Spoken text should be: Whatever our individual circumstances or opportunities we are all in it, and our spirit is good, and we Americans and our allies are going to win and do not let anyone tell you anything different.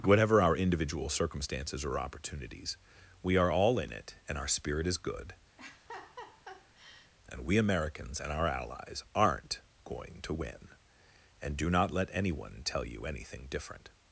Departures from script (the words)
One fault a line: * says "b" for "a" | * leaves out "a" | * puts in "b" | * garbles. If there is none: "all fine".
* says "aren't" for "are"